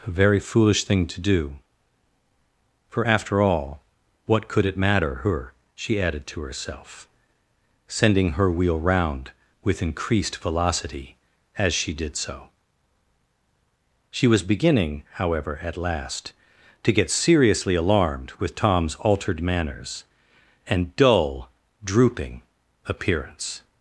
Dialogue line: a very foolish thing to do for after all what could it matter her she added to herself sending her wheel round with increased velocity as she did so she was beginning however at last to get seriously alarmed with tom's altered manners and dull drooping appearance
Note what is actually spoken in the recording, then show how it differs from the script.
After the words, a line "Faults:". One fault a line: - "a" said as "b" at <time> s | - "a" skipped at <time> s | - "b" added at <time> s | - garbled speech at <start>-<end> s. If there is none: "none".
a very foolish thing to do for after all what could it matter her she added to herself sending her wheel round with increased velocity as she did so she was beginning however at last to get seriously alarmed with tom's altered manners and dull drooping appearance
Faults:
none